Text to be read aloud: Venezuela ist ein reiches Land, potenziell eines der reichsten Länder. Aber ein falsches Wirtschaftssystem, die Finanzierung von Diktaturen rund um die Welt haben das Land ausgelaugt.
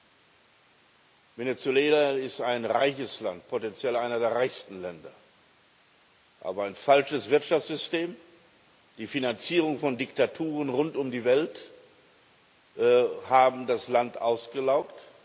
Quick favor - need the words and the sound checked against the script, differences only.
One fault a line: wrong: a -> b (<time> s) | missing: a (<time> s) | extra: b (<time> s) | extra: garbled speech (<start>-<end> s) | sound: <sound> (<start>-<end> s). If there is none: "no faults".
no faults